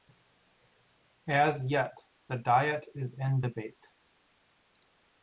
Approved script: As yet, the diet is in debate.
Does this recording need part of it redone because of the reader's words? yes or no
no